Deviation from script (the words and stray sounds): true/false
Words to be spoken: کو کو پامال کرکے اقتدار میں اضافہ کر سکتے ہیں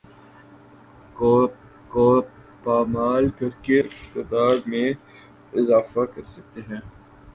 false